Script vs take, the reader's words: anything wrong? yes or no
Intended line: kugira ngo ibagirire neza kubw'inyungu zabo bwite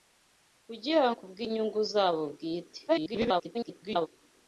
yes